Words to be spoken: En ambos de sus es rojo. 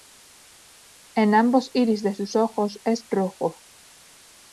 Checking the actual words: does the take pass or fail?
fail